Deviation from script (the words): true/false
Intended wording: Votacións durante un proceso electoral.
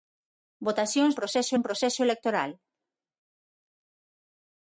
true